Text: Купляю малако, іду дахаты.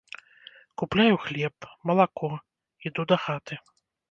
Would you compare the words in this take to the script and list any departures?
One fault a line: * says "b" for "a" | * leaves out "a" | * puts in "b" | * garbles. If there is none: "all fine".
* puts in "хлеб"